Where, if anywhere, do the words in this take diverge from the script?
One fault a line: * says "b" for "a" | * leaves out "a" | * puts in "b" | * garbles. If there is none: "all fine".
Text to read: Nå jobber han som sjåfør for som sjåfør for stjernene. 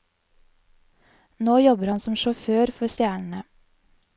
* leaves out "som sjåfør for"